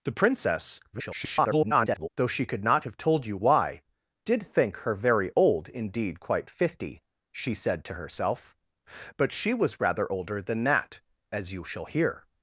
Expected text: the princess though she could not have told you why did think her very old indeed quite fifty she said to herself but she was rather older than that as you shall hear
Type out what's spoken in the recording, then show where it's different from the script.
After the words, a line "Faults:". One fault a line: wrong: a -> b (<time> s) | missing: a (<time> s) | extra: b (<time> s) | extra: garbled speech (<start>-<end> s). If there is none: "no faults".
the princess [garbled] though she could not have told you why did think her very old indeed quite fifty she said to herself but she was rather older than that as you shall hear
Faults:
extra: garbled speech (0.9-2.1 s)